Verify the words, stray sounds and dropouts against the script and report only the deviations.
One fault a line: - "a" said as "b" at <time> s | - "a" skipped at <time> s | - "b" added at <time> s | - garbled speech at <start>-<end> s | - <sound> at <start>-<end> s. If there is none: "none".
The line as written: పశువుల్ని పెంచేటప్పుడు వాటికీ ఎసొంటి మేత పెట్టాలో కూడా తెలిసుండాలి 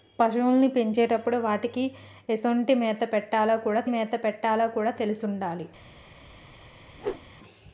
- "మేత పెట్టాలో కూడా" added at 3.9 s
- whoosh at 7.0-7.3 s